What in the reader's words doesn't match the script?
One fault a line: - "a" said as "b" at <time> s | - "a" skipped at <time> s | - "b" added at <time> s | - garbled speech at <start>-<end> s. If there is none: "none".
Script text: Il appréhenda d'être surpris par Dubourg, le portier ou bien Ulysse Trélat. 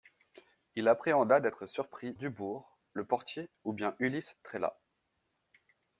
- "par" skipped at 2.1 s